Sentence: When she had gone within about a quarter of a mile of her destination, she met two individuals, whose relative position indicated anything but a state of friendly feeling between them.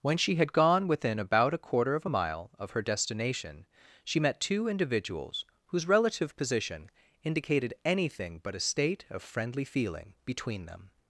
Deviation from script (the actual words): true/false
false